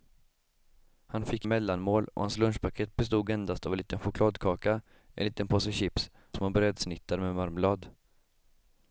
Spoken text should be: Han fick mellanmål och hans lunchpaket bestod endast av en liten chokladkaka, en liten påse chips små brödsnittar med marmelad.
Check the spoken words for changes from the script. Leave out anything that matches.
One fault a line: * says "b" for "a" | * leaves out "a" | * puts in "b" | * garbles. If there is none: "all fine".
all fine